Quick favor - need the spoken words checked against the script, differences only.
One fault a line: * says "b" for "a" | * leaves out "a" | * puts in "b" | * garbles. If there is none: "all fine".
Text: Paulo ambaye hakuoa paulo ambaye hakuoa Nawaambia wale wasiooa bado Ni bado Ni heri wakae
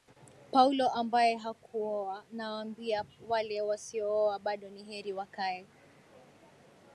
* leaves out "paulo ambaye hakuoa"
* leaves out "bado Ni"